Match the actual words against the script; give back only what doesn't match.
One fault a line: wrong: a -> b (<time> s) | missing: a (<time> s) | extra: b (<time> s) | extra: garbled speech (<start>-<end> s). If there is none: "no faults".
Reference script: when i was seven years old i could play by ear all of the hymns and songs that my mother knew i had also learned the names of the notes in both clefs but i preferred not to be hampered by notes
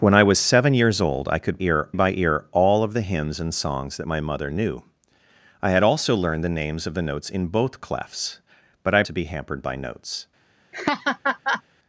wrong: play -> ear (1.6 s)
missing: preferred not (9.0 s)